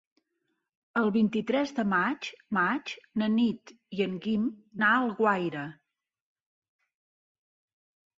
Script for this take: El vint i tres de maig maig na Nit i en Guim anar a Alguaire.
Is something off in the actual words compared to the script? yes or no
no